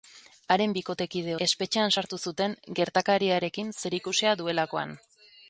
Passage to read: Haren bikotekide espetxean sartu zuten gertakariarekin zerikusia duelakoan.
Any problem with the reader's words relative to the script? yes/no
no